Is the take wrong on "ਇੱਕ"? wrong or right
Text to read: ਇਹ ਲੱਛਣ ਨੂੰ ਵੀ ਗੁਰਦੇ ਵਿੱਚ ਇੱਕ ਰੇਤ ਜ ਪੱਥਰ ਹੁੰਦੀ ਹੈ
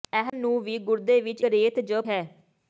wrong